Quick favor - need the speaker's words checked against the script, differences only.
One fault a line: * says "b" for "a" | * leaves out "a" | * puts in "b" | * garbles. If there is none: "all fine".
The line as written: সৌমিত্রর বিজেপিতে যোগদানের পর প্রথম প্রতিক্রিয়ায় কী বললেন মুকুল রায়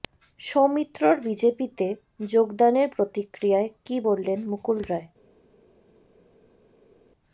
* leaves out "পর প্রথম"